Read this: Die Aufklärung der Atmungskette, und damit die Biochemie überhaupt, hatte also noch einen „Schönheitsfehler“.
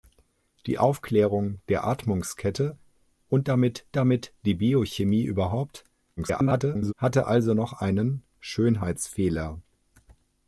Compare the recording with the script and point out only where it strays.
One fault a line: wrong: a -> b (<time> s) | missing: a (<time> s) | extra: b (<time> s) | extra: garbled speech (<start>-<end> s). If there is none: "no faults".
extra: damit (4.0 s)
extra: garbled speech (6.2-6.9 s)